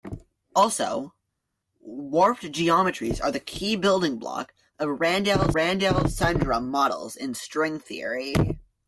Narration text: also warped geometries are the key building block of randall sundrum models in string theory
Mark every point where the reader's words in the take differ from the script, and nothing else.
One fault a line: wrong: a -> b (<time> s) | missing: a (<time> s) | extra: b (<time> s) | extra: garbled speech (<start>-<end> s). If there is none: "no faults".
extra: randall (5.5 s)